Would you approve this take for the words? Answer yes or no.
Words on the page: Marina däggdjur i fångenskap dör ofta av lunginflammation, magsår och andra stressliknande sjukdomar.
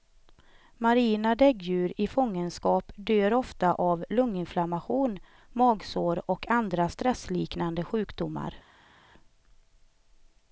yes